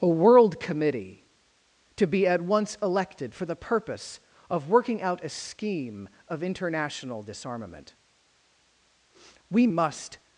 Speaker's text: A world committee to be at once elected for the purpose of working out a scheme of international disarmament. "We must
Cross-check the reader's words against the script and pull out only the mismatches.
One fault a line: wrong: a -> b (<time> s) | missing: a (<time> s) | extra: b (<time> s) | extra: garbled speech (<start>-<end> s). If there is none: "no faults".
no faults